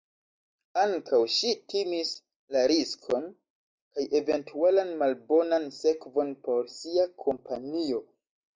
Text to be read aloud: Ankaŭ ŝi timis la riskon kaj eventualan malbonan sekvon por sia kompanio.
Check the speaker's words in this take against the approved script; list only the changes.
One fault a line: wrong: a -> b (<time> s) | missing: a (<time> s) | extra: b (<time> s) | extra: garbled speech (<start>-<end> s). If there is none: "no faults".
no faults